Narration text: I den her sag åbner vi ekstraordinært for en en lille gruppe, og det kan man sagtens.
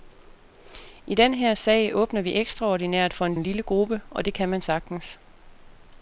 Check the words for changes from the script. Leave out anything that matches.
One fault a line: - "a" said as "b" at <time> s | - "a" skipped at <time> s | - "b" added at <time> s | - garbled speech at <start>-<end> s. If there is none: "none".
none